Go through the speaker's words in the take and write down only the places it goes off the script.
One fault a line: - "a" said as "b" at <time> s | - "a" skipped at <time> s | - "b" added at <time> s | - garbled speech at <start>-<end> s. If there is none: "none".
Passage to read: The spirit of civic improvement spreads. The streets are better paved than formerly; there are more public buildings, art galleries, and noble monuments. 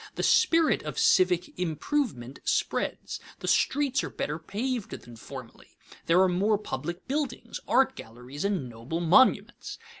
none